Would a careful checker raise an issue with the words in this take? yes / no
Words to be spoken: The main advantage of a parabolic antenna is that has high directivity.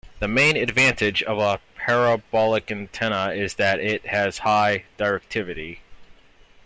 yes